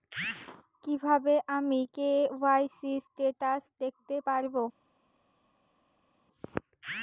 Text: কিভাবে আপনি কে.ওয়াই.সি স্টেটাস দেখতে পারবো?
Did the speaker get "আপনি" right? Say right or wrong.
wrong